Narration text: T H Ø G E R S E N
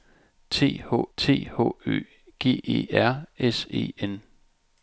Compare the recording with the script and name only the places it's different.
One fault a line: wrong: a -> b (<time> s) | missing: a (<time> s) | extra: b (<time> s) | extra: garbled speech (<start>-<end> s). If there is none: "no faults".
extra: t H (1.2 s)